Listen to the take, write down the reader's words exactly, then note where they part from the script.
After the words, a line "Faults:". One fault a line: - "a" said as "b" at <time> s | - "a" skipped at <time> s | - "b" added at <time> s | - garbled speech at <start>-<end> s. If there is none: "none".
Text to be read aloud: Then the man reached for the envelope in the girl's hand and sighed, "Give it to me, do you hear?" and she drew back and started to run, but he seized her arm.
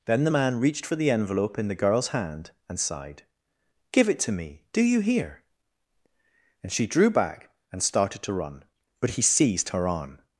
Then the man reached for the envelope in the girl's hand and sighed, "Give it to me, do you hear?" and she drew back and started to run, but he seized her arm.
Faults:
none